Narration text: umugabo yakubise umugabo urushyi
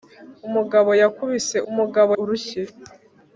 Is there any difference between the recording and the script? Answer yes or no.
no